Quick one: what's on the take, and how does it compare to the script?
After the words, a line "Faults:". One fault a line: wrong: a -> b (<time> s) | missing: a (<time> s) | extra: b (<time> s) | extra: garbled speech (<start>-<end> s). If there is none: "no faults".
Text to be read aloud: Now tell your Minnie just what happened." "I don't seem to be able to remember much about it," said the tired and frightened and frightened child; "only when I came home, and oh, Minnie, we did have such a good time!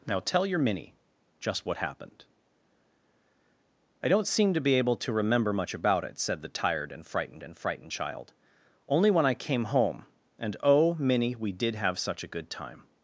Now tell your Minnie just what happened." "I don't seem to be able to remember much about it," said the tired and frightened and frightened child; "only when I came home, and oh, Minnie, we did have such a good time!
Faults:
no faults